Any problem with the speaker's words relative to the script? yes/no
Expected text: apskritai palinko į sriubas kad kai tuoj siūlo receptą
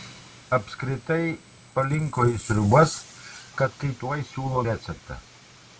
no